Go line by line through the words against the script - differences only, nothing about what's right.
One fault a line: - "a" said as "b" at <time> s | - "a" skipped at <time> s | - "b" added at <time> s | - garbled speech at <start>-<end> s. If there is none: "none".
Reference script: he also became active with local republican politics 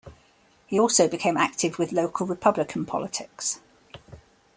none